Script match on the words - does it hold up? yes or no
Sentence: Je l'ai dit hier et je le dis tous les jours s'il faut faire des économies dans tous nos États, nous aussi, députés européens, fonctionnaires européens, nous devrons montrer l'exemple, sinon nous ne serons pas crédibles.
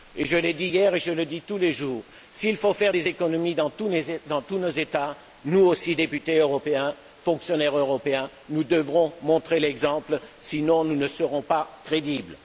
yes